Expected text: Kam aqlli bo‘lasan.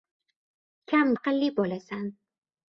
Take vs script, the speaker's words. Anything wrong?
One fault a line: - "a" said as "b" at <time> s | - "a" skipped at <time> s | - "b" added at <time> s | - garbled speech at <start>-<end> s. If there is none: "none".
none